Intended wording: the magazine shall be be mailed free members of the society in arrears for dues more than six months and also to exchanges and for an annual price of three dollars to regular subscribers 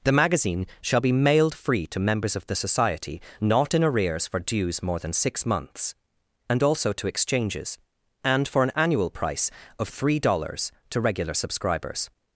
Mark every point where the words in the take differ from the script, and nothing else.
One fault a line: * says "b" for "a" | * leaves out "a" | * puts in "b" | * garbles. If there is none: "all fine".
* leaves out "be"
* puts in "to"
* puts in "not"